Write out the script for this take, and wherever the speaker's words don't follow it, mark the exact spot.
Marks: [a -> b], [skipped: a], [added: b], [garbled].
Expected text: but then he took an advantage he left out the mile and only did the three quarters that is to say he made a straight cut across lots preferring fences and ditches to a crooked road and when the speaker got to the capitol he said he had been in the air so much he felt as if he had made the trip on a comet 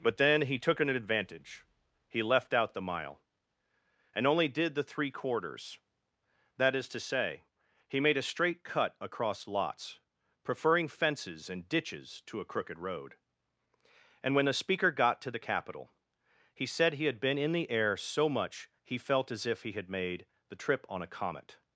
but then he took an advantage he left out the mile and only did the three quarters that is to say he made a straight cut across lots preferring fences and ditches to a crooked road and when the speaker got to the capitol he said he had been in the air so much he felt as if he had made the trip on a comet